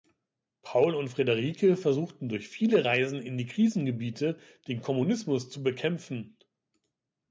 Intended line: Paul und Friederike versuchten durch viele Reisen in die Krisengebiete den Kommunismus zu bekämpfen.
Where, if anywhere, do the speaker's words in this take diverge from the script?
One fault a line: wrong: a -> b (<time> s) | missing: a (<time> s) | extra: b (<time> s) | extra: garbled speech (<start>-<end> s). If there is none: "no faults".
no faults